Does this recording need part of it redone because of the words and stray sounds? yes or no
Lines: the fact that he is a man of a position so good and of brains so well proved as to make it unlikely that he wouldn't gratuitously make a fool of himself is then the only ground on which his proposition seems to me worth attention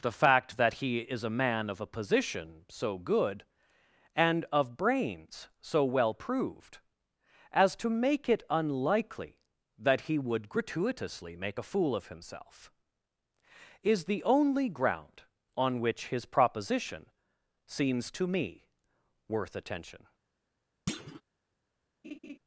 yes